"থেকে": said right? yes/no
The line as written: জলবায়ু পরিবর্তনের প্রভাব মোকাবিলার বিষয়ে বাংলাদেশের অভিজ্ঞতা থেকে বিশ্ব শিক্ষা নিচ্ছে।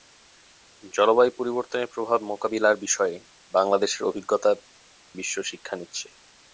no